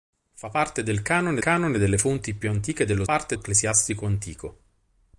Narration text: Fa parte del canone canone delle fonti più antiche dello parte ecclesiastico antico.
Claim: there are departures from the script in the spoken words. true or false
false